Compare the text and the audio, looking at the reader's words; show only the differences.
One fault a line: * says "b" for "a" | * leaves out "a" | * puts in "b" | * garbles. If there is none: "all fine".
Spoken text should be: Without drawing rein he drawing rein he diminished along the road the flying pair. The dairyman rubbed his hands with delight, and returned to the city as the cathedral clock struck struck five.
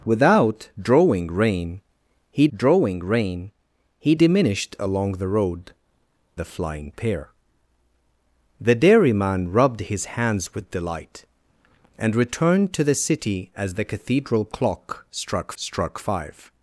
all fine